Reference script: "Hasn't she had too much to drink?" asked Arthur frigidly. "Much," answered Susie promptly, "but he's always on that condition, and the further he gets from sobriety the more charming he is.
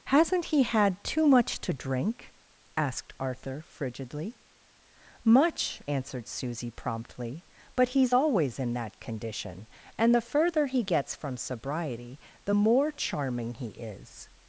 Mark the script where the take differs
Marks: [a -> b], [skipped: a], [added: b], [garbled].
"Hasn't [she -> he] had too much to drink?" asked Arthur frigidly. "Much," answered Susie promptly, "but he's always [on -> in] that condition, and the further he gets from sobriety the more charming he is.